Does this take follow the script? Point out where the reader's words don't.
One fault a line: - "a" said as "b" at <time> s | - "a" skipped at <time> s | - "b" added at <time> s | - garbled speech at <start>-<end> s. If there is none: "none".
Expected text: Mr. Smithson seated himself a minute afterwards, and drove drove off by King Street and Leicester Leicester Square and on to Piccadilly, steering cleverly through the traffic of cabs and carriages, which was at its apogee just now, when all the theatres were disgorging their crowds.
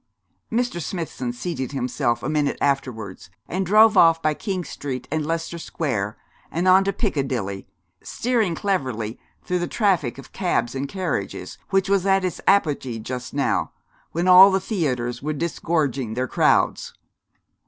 - "drove" skipped at 4.0 s
- "Leicester" skipped at 5.6 s